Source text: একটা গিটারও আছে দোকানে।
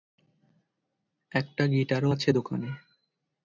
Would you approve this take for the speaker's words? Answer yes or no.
yes